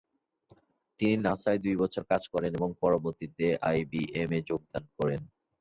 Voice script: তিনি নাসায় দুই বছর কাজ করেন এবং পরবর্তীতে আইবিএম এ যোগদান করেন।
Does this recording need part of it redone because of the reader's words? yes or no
no